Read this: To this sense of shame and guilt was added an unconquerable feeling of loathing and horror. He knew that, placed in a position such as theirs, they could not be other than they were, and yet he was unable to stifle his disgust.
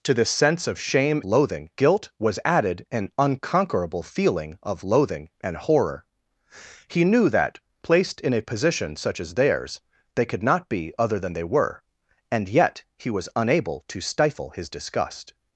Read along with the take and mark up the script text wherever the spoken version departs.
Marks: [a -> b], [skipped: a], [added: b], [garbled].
To this sense of shame [and -> loathing] guilt was added an unconquerable feeling of loathing and horror. He knew that, placed in a position such as theirs, they could not be other than they were, and yet he was unable to stifle his disgust.